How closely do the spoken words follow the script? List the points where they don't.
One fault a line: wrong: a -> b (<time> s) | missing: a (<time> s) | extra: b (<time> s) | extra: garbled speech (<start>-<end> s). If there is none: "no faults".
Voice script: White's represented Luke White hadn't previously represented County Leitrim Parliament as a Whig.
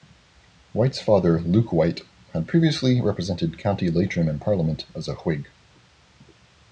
wrong: represented -> father (1.0 s)
wrong: hadn't -> had (2.3 s)
extra: in (4.3 s)